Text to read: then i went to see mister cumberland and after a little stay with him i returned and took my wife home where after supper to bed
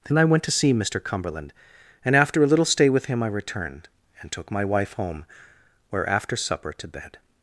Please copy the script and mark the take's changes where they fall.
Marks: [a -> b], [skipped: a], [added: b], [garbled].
then i went to see mister cumberland and after a little stay with him i returned and took my wife home where after supper to bed